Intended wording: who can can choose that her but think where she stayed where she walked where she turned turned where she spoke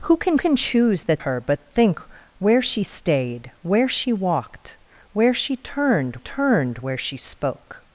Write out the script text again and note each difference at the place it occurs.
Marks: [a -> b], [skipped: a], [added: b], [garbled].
who can can choose that her but think where she stayed where she walked where she turned turned where she spoke